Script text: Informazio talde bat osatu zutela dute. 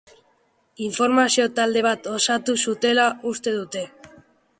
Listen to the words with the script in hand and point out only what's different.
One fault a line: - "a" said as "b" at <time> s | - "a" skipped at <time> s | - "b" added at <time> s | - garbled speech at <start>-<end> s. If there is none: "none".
- "uste" added at 3.3 s